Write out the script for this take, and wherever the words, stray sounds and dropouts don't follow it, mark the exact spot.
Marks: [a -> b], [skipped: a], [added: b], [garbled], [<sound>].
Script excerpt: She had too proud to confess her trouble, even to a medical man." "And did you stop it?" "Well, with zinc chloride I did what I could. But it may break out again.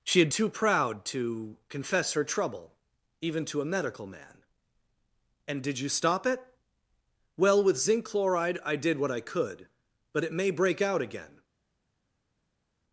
She had too proud to confess her trouble, even to a medical man." "And did you stop it?" "Well, with zinc chloride I did what I could. But it may break out again.